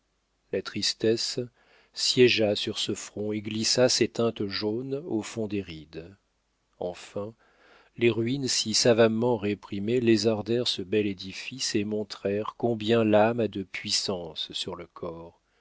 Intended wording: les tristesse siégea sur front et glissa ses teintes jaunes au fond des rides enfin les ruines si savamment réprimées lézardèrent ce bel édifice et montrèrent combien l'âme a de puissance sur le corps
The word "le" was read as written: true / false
true